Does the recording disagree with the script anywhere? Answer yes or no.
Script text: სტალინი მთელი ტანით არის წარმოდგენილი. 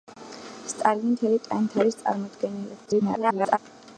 yes